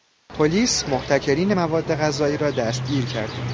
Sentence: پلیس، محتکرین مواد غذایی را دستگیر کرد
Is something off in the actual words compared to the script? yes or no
no